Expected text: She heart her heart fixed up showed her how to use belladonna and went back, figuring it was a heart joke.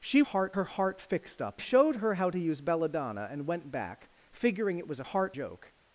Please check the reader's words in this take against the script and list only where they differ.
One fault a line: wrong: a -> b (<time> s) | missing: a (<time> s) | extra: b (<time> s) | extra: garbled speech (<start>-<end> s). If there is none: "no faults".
no faults